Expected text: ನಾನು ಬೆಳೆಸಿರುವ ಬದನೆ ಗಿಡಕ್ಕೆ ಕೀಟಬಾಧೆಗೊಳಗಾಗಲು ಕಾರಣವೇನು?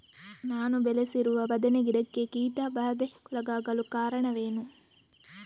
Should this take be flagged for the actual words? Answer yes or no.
no